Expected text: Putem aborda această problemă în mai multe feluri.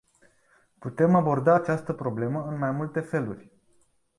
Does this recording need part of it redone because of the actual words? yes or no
no